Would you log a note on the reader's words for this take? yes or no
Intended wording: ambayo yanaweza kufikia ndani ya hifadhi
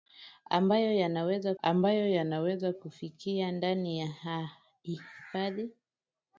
yes